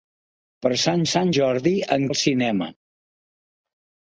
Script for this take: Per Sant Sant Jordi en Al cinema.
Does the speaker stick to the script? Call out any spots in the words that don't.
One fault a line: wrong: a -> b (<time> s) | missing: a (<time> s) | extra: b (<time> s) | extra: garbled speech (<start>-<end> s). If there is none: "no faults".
no faults